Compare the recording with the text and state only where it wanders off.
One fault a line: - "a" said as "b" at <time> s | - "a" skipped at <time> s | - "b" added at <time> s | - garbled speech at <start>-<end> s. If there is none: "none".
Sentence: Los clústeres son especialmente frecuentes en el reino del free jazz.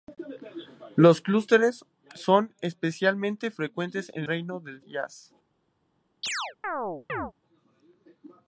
- "el" skipped at 4.2 s
- "free" skipped at 4.8 s